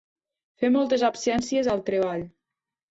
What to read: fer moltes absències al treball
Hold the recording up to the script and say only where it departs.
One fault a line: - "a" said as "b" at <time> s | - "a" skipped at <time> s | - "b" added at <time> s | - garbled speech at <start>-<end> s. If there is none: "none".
none